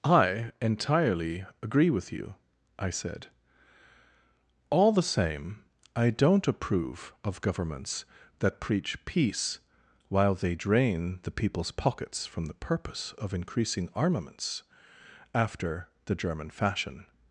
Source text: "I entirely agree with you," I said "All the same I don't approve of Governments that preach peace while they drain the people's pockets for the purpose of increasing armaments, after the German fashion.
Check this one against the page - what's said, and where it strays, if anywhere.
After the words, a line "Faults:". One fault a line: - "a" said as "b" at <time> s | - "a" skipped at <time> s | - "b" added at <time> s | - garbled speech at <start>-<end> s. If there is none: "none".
"I entirely agree with you," I said "All the same I don't approve of Governments that preach peace while they drain the people's pockets from the purpose of increasing armaments, after the German fashion.
Faults:
- "for" said as "from" at 12.3 s